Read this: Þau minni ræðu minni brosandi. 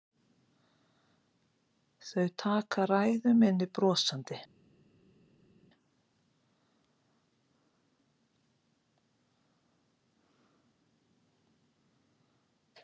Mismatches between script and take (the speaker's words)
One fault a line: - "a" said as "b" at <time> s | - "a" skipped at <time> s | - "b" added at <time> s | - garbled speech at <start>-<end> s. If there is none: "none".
- "minni" said as "taka" at 2.4 s